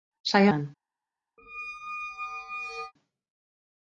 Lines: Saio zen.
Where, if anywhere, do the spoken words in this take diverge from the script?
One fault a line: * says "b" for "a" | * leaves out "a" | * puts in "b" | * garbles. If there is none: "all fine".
all fine